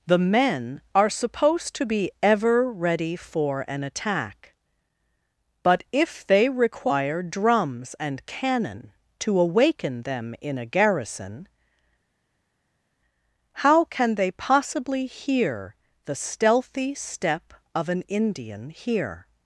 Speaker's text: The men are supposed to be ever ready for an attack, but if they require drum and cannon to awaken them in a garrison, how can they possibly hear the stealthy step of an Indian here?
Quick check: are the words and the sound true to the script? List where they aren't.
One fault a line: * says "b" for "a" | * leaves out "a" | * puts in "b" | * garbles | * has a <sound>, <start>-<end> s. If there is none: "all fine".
* says "drums" for "drum"